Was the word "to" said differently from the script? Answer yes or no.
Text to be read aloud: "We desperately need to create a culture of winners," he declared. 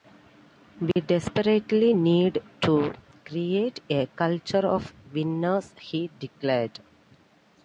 no